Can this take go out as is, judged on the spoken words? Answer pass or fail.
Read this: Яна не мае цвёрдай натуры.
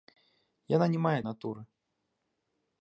fail